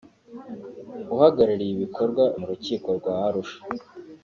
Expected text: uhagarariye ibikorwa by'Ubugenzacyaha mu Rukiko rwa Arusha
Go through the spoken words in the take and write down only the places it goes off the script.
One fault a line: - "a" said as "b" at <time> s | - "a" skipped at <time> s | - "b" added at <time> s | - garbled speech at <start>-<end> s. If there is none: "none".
- "by'Ubugenzacyaha" skipped at 2.2 s